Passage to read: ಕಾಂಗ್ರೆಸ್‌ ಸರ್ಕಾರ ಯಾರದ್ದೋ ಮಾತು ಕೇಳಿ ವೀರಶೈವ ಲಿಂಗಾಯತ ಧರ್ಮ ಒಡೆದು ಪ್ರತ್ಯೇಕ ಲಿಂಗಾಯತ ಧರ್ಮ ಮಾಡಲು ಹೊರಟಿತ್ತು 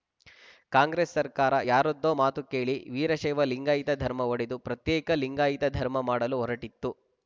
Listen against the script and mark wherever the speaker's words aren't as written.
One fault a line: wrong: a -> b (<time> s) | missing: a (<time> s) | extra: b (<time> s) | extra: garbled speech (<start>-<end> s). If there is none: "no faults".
no faults